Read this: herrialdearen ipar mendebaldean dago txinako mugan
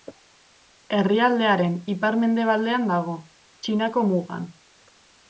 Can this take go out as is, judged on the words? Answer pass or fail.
pass